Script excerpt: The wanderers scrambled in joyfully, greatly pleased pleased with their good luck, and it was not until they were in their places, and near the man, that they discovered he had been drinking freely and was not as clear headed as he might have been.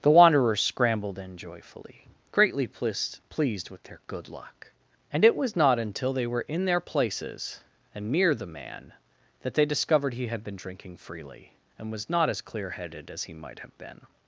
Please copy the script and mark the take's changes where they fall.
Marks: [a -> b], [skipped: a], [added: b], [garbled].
The wanderers scrambled in joyfully, greatly pleased pleased with their good luck, and it was not until they were in their places, and near the man, that they discovered he had been drinking freely and was not as clear headed as he might have been.